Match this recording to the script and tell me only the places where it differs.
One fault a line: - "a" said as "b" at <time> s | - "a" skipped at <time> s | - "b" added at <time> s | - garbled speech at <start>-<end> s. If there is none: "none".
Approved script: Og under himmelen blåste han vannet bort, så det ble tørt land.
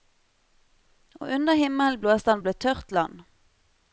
- "vannet bort så" skipped at 2.4 s